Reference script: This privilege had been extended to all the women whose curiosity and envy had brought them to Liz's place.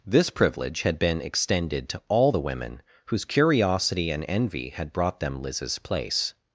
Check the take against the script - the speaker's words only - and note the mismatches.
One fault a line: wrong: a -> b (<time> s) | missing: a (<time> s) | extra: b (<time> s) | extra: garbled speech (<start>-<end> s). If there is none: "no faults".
missing: to (5.4 s)